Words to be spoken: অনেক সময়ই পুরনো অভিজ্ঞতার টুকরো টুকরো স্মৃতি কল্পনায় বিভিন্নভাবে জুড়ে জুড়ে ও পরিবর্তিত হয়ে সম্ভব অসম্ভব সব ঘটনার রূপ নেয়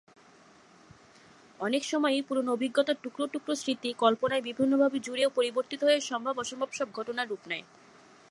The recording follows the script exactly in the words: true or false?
false